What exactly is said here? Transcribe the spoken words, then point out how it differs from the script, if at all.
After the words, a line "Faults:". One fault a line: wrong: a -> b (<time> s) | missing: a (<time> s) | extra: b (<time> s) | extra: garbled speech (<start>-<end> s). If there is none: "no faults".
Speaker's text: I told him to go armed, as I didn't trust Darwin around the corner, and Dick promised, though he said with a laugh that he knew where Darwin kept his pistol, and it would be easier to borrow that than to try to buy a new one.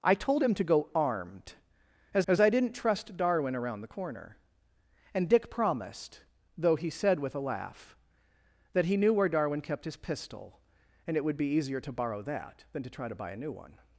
I told him to go armed, as as I didn't trust Darwin around the corner, and Dick promised, though he said with a laugh that he knew where Darwin kept his pistol, and it would be easier to borrow that than to try to buy a new one.
Faults:
extra: as (2.3 s)